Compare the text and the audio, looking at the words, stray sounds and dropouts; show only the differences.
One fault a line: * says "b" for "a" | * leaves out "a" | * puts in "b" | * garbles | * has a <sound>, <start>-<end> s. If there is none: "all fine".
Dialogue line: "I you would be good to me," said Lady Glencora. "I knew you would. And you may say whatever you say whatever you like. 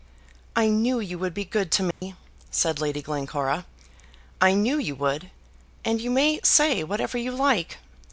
* puts in "knew"
* has a dropout, 1.9-2.0 s
* leaves out "say whatever you"